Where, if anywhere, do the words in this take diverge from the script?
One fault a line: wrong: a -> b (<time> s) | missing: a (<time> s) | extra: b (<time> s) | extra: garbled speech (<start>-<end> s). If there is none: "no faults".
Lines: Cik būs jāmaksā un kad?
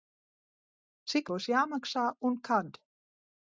no faults